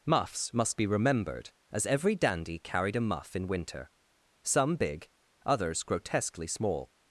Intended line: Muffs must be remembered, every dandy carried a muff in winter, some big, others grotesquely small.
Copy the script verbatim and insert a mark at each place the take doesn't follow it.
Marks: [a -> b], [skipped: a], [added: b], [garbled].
Muffs must be remembered, [added: as] every dandy carried a muff in winter, some big, others grotesquely small.